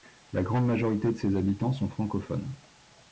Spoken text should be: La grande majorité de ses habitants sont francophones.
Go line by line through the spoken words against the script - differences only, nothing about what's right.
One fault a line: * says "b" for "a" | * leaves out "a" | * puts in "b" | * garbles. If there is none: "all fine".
all fine